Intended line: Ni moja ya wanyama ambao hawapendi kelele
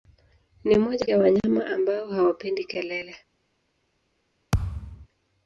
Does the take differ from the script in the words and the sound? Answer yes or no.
yes